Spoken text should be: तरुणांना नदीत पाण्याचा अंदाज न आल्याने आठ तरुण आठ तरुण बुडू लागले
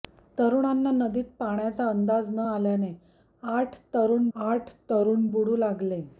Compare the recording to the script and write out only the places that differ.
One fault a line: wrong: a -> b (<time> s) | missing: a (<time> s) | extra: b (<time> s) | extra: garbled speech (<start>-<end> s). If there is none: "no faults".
no faults